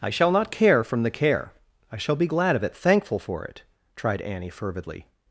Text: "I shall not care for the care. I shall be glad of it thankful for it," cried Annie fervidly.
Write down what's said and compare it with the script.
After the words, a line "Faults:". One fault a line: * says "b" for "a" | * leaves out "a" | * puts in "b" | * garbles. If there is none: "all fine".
"I shall not care from the care. I shall be glad of it thankful for it," tried Annie fervidly.
Faults:
* says "from" for "for"
* says "tried" for "cried"